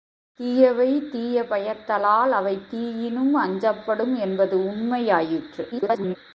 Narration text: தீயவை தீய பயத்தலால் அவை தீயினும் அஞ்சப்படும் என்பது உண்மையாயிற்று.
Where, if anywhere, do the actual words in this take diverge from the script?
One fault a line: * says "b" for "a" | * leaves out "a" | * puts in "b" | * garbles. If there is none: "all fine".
* garbles